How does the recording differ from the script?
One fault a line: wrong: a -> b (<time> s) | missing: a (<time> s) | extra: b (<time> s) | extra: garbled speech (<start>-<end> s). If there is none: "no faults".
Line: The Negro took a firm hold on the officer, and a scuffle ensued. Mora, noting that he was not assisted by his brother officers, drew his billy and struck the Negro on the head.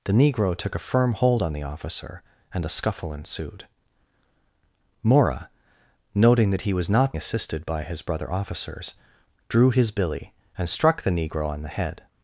no faults